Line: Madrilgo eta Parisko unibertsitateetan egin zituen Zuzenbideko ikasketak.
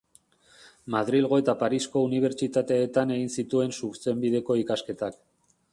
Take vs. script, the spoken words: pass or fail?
pass